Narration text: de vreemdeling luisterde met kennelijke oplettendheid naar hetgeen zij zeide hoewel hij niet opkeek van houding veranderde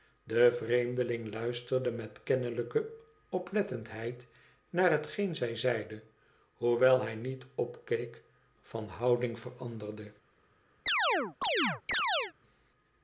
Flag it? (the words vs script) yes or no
no